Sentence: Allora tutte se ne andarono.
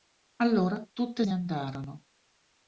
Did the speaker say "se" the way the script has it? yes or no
no